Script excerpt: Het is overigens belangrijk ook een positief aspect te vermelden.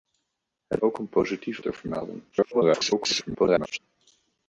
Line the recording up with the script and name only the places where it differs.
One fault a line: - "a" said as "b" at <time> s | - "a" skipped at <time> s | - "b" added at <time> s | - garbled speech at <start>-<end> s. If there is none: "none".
- "is overigens belangrijk" skipped at 0.8 s
- "aspect" skipped at 1.6 s
- garbled speech at 2.3-3.8 s